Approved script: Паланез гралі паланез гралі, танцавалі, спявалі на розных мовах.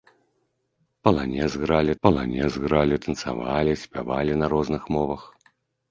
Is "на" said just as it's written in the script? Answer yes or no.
yes